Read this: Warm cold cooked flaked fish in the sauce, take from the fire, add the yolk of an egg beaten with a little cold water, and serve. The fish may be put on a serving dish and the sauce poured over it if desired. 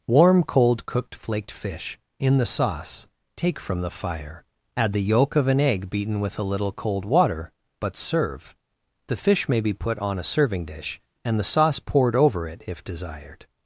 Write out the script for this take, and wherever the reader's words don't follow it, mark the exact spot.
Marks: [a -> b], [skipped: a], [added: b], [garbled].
Warm cold cooked flaked fish in the sauce, take from the fire, add the yolk of an egg beaten with a little cold water, [and -> but] serve. The fish may be put on a serving dish and the sauce poured over it if desired.